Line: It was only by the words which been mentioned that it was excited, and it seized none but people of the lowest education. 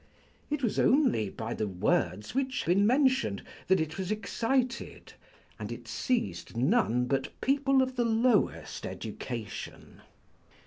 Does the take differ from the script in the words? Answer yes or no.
no